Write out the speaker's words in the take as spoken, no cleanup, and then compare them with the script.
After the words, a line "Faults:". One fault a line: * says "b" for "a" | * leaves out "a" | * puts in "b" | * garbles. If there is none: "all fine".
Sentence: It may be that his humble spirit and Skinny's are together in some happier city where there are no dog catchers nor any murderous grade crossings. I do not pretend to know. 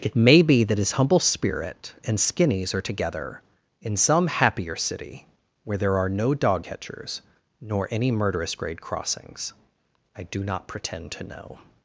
It may be that his humble spirit and Skinny's are together in some happier city where there are no dog catchers nor any murderous grade crossings. I do not pretend to know.
Faults:
all fine